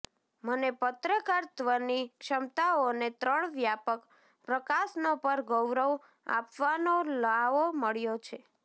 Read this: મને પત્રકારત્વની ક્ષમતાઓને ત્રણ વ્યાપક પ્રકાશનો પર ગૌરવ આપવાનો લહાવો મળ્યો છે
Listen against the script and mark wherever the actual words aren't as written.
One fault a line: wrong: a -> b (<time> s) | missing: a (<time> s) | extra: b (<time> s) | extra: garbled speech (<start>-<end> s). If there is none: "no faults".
no faults